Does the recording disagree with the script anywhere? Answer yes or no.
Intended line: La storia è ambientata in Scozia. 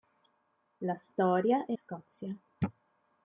yes